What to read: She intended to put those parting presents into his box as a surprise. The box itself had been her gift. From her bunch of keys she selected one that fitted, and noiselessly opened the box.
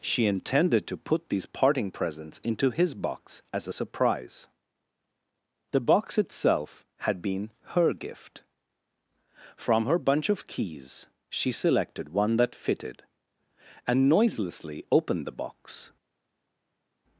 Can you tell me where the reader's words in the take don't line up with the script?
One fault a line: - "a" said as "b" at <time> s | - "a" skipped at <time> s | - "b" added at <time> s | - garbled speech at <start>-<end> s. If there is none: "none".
- "those" said as "these" at 1.3 s